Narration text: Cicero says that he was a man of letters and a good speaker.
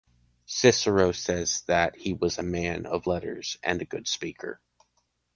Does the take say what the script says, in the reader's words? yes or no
yes